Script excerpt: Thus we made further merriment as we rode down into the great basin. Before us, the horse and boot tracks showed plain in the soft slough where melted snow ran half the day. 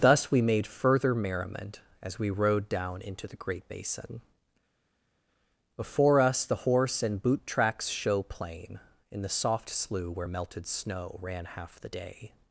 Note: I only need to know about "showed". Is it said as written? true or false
false